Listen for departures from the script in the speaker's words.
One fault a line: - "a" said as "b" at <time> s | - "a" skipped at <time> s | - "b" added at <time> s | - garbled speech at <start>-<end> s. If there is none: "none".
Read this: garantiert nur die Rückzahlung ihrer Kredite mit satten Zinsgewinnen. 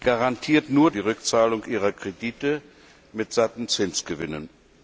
none